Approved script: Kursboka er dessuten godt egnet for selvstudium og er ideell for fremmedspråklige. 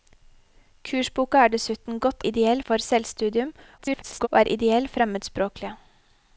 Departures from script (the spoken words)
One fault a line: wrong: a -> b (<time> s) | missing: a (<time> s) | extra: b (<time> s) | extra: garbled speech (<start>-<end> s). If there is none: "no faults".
wrong: egnet -> ideell (2.2 s)
extra: garbled speech (3.8-4.3 s)
missing: for (4.9 s)